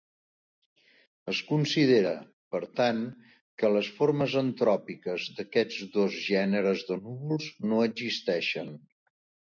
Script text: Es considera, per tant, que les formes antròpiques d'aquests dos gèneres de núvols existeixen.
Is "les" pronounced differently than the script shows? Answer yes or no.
no